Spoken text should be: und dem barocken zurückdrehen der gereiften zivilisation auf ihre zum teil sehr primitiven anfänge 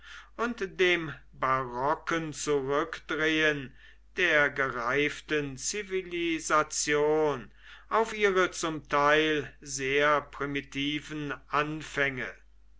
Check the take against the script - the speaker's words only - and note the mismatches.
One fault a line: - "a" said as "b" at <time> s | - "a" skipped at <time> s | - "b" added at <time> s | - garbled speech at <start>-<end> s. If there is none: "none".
none